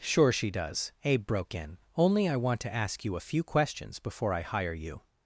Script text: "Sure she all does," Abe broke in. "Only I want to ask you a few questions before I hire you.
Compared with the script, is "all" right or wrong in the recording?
wrong